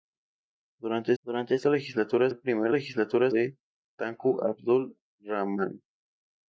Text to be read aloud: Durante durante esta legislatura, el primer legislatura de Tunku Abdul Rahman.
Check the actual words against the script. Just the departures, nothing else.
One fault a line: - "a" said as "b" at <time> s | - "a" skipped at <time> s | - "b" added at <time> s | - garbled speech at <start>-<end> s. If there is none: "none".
none